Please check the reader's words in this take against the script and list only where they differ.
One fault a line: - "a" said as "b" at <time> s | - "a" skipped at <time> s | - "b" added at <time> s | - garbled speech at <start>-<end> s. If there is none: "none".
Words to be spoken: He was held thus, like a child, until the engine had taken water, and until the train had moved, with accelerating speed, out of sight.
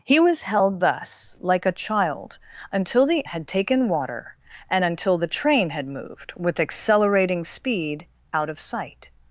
- "engine" skipped at 3.3 s